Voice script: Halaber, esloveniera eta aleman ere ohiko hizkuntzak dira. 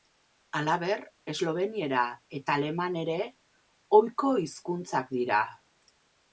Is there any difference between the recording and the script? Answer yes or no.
no